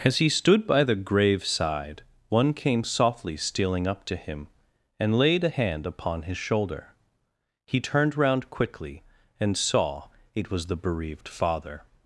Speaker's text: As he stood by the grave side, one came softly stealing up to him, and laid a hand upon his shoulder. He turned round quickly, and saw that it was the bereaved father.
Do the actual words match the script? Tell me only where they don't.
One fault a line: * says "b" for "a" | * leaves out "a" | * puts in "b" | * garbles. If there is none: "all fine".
* leaves out "that"